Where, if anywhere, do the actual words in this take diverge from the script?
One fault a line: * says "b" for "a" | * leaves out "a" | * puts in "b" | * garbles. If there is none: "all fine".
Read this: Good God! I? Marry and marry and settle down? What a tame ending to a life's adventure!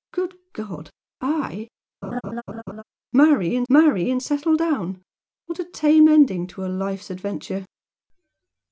all fine